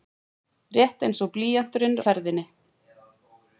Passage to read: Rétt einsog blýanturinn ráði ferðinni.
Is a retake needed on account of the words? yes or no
yes